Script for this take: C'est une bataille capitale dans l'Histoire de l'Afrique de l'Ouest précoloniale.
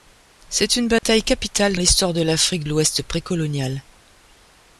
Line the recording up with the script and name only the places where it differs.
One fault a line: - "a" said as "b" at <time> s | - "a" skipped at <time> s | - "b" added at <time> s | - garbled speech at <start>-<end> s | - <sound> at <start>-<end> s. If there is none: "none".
- dropout at 1.0-1.0 s
- "dans" skipped at 1.8 s
- "de" skipped at 2.6 s